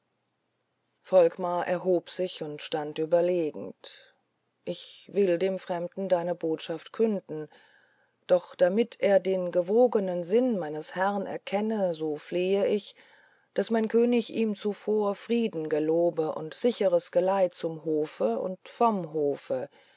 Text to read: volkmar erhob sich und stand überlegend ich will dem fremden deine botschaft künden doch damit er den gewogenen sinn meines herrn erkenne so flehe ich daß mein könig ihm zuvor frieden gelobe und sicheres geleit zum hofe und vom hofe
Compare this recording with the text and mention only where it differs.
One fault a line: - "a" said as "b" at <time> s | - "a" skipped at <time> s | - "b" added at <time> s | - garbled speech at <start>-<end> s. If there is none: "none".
none